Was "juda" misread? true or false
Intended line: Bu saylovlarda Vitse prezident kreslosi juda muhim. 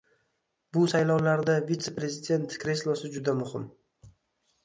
false